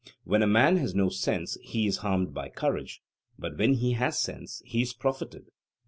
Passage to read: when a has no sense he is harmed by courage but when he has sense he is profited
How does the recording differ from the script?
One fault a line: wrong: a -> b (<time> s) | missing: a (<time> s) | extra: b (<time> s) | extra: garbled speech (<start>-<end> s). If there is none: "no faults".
extra: man (0.5 s)